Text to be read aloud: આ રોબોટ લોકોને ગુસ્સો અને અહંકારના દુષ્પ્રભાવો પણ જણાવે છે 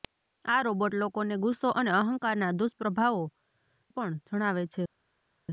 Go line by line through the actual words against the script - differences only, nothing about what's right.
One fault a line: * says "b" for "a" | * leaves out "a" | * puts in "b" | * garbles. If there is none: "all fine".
all fine